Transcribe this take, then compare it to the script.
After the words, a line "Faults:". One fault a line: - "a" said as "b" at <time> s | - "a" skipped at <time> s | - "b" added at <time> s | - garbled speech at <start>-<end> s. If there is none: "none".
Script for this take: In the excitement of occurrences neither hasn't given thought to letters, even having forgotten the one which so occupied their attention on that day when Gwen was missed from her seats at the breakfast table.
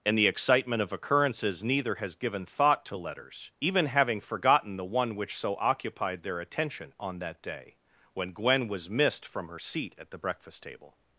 In the excitement of occurrences neither has given thought to letters, even having forgotten the one which so occupied their attention on that day when Gwen was missed from her seat at the breakfast table.
Faults:
- "hasn't" said as "has" at 1.9 s
- "seats" said as "seat" at 9.6 s